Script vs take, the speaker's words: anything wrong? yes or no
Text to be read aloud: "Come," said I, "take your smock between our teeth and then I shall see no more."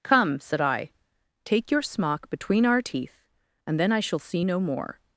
no